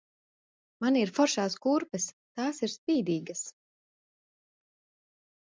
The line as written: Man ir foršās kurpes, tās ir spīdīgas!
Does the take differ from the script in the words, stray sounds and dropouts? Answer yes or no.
no